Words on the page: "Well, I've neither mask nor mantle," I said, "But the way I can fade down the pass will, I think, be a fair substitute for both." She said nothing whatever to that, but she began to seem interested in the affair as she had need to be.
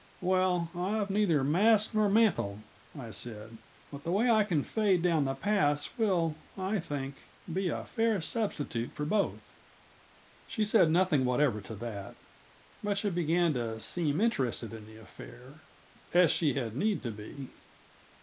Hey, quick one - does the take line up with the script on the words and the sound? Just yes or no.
yes